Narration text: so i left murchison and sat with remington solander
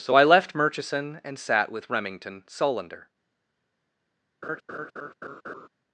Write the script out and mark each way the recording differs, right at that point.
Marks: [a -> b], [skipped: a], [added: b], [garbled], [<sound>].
so i left murchison and sat with remington solander [laugh]